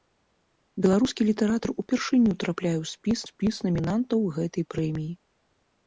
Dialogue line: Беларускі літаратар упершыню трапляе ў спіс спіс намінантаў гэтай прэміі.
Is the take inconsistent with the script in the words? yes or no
no